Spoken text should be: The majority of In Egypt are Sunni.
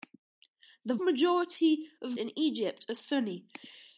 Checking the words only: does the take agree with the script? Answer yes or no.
yes